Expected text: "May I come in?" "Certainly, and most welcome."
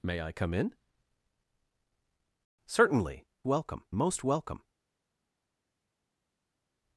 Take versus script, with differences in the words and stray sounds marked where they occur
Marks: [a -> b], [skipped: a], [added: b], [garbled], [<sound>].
"May I come in?" "Certainly, [and -> welcome] most welcome."